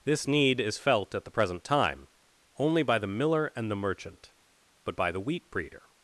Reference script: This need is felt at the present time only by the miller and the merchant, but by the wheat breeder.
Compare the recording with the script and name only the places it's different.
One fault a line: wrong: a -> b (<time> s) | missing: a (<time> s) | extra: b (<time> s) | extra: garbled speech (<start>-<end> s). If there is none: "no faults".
no faults